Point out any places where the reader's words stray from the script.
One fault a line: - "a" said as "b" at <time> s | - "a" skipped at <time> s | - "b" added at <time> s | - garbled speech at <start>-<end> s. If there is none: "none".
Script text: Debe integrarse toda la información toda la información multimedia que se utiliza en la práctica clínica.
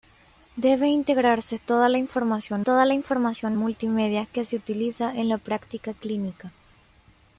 none